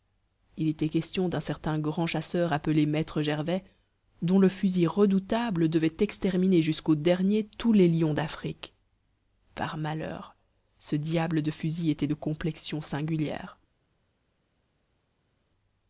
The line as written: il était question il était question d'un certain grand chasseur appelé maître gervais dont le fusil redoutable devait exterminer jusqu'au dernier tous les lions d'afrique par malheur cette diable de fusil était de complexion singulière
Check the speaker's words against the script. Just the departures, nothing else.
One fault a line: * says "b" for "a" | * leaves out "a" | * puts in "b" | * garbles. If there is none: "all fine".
* leaves out "il était question"
* says "ce" for "cette"